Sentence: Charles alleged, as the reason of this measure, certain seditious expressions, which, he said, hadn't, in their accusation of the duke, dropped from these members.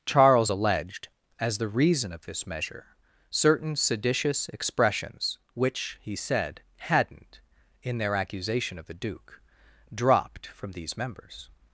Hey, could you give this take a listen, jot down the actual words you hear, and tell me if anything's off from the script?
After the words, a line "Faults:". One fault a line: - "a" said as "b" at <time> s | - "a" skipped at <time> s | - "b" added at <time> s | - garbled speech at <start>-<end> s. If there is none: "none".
Charles alleged, as the reason of this measure, certain seditious expressions, which, he said, hadn't, in their accusation of the duke, dropped from these members.
Faults:
none